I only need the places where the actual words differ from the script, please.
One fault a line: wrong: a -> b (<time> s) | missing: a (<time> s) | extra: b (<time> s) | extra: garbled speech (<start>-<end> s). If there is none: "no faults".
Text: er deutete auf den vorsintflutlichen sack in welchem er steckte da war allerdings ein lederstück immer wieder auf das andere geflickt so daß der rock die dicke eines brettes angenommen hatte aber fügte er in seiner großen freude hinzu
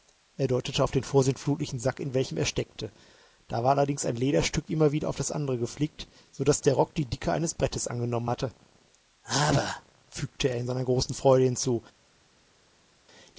no faults